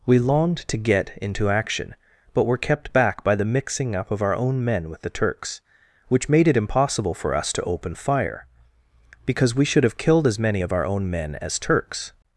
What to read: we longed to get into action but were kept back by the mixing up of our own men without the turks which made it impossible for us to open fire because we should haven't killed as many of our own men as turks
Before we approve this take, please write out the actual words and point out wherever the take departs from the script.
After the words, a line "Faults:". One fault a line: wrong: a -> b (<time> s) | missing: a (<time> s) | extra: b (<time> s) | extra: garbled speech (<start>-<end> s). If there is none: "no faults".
we longed to get into action but were kept back by the mixing up of our own men with the turks which made it impossible for us to open fire because we should have killed as many of our own men as turks
Faults:
wrong: without -> with (4.9 s)
wrong: haven't -> have (9.8 s)